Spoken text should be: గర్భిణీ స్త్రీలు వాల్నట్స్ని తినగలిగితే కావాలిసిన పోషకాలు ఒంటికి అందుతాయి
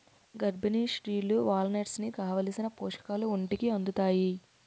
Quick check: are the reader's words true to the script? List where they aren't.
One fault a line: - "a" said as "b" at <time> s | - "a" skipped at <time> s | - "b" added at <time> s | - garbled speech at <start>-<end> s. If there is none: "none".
- "తినగలిగితే" skipped at 2.1 s